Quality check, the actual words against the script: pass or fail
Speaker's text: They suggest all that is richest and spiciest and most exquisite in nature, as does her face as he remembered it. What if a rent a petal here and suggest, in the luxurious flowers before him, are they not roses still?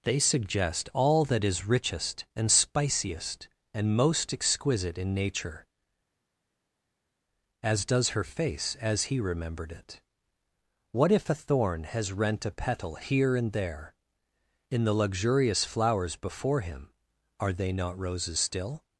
fail